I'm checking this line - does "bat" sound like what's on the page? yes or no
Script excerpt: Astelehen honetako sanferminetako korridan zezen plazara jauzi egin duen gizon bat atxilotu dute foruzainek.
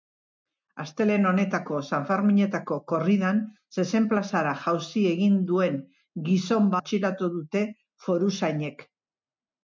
no